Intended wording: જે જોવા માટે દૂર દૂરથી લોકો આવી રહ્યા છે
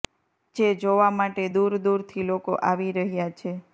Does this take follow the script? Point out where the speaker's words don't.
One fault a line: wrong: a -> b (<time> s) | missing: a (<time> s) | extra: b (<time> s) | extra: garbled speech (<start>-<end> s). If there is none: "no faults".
no faults